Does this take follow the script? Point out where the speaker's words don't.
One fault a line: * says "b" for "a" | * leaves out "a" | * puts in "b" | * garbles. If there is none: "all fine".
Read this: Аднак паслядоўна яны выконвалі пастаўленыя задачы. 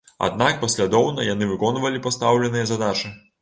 all fine